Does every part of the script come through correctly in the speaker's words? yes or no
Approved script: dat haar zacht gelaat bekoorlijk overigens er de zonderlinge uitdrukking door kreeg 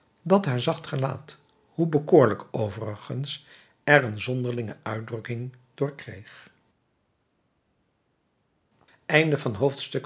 no